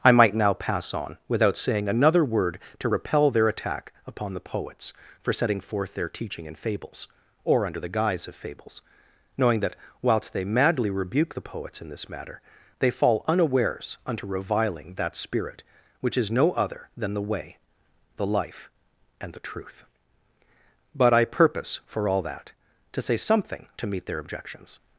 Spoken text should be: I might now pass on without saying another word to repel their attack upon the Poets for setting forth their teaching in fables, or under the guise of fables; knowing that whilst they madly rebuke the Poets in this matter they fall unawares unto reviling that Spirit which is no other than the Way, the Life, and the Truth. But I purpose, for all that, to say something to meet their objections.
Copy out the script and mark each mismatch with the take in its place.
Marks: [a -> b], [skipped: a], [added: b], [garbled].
I might now pass on without saying another word to repel their attack upon the Poets for setting forth their teaching in fables, or under the guise of fables; knowing that whilst they madly rebuke the Poets in this matter they fall unawares unto reviling that Spirit which is no other than the Way, the Life, and the Truth. But I purpose, for all that, to say something to meet their objections.